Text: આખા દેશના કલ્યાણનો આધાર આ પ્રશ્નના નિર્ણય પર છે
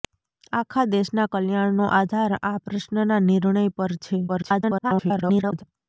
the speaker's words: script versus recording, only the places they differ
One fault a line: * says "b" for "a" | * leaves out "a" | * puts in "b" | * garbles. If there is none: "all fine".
* garbles